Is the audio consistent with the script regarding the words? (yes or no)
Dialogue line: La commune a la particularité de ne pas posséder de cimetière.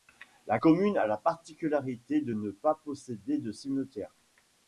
yes